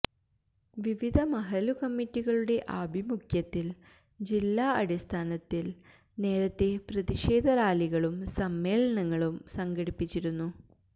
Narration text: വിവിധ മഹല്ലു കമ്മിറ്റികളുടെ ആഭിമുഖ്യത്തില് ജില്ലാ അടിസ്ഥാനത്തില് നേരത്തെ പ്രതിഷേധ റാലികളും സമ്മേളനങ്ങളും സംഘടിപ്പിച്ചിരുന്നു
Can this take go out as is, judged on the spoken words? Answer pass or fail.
pass